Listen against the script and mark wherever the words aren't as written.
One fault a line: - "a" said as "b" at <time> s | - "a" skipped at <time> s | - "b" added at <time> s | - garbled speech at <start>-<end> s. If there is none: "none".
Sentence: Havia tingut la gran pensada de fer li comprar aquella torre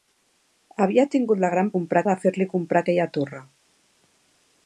- "pensada" said as "comprar" at 1.7 s